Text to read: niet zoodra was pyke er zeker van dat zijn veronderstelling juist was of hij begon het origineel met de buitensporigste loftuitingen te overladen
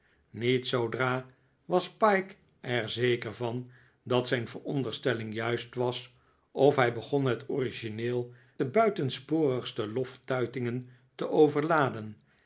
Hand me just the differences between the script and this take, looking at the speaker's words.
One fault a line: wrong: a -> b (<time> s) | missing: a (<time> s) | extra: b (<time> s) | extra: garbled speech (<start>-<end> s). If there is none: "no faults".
missing: met (8.3 s)